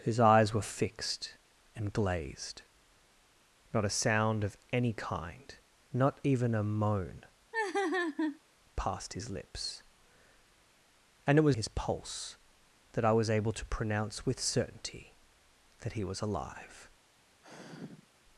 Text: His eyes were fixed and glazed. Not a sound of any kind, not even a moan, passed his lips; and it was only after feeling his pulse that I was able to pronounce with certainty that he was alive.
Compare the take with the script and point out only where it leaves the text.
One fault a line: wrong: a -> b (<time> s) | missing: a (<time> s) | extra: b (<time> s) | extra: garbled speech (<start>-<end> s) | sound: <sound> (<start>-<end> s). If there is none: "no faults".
sound: laugh (7.5-8.4 s)
missing: only after feeling (11.6 s)
sound: sigh (17.4-18.1 s)